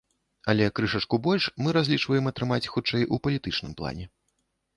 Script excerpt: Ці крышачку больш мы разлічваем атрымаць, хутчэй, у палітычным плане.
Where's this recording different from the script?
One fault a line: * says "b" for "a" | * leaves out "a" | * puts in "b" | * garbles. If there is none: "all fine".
* says "Але" for "Ці"